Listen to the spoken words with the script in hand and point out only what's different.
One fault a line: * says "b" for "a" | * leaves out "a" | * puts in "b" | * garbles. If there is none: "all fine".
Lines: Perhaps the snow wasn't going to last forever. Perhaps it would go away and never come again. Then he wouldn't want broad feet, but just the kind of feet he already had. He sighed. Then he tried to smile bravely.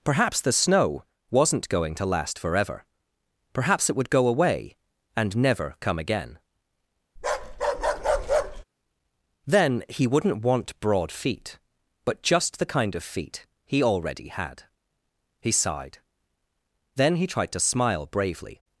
all fine